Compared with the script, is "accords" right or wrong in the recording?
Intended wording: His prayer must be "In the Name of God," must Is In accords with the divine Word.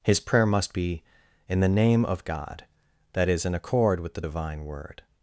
wrong